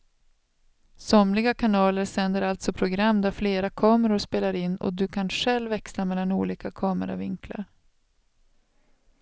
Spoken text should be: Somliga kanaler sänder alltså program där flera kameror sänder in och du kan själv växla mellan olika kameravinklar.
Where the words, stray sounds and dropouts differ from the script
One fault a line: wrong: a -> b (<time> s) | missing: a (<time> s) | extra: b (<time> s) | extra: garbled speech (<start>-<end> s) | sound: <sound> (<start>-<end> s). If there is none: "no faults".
wrong: sänder -> spelar (4.2 s)